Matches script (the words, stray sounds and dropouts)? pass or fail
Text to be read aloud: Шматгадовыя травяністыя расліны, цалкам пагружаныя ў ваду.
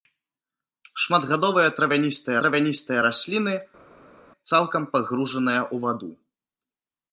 fail